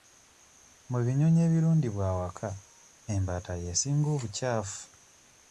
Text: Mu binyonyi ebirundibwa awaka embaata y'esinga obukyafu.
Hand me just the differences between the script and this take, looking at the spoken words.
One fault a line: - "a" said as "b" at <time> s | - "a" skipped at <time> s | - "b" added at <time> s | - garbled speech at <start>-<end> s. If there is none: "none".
none